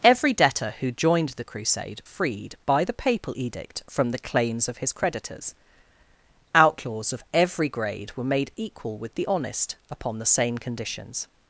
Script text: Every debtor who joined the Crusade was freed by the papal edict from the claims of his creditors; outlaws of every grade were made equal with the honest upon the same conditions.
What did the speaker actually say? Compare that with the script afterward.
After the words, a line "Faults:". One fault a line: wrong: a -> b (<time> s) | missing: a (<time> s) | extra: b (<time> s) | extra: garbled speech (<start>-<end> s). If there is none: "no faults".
Every debtor who joined the Crusade freed by the papal edict from the claims of his creditors; outlaws of every grade were made equal with the honest upon the same conditions.
Faults:
missing: was (2.0 s)